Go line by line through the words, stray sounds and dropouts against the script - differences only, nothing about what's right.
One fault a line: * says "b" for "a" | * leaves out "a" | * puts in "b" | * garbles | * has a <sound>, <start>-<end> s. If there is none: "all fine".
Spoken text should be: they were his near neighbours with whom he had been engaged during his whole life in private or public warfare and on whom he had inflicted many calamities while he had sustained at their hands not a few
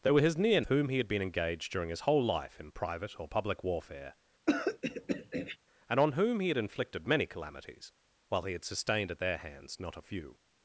* leaves out "neighbours with"
* has a throat clearing, 4.5-5.6 s